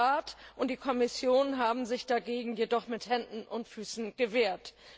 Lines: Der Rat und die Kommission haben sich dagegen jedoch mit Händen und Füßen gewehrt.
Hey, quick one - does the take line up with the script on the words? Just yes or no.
yes